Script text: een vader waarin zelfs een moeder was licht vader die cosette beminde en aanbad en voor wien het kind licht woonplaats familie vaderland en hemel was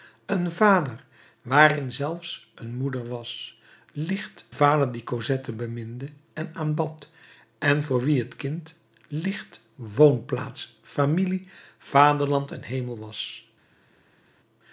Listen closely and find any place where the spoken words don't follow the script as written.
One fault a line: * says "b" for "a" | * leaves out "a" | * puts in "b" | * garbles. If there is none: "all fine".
all fine